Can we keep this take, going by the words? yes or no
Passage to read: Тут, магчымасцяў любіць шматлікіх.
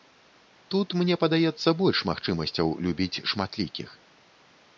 no